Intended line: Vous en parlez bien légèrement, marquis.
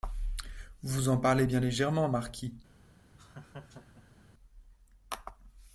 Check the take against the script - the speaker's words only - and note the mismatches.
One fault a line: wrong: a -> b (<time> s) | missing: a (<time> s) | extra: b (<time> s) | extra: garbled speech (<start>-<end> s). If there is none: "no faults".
no faults